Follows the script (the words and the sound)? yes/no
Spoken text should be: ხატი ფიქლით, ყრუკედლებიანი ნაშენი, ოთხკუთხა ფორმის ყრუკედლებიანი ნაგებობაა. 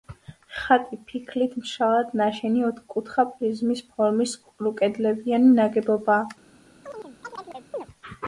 no